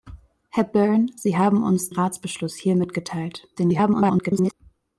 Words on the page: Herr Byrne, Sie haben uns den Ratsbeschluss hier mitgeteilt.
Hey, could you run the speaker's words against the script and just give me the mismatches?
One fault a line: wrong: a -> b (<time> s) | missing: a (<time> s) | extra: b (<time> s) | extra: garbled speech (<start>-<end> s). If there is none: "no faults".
missing: den (1.9 s)
extra: garbled speech (3.5-4.5 s)